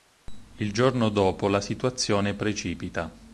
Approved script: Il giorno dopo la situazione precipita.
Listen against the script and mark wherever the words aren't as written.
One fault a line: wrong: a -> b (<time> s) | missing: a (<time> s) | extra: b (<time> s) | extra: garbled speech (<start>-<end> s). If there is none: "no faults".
no faults